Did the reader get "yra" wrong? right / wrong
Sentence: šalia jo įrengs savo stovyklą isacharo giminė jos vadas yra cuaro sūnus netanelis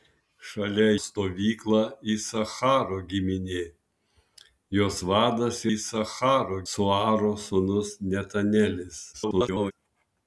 wrong